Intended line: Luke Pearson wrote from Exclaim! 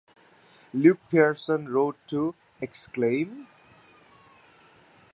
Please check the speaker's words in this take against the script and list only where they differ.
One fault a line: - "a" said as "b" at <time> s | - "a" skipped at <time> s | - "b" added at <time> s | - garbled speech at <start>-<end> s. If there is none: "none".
- "from" said as "to" at 2.1 s